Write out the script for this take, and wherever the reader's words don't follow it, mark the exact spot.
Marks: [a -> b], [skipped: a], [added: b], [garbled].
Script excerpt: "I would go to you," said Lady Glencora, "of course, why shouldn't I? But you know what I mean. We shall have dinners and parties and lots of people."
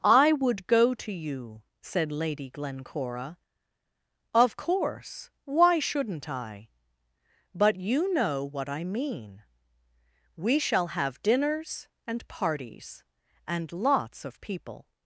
"I would go to you," said Lady Glencora, "of course, why shouldn't I? But you know what I mean. We shall have dinners and parties and lots of people."